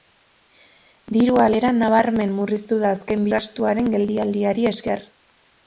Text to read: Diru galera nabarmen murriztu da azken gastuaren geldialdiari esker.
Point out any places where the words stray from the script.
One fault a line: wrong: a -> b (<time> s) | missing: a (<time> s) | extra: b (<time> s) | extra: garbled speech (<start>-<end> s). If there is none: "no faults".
no faults